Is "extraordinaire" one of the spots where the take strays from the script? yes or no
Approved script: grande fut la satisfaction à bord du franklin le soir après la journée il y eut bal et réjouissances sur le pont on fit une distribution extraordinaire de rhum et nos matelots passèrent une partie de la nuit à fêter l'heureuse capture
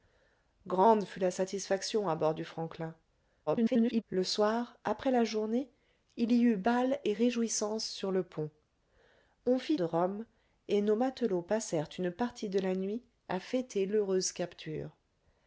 yes